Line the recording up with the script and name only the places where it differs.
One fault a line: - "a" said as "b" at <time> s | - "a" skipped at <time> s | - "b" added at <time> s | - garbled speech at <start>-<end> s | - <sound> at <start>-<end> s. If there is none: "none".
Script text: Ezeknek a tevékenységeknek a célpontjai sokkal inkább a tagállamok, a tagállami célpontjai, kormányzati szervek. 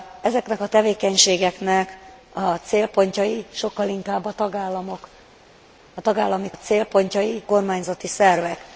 none